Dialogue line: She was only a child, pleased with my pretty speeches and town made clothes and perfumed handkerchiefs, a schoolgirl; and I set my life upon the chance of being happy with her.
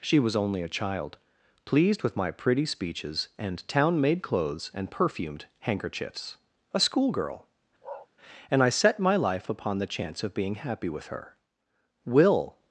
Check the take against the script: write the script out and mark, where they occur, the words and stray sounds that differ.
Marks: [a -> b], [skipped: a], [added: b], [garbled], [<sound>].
She was only a child, pleased with my pretty speeches and town made clothes and perfumed handkerchiefs, a schoolgirl; [bark] and I set my life upon the chance of being happy with her. [added: Will]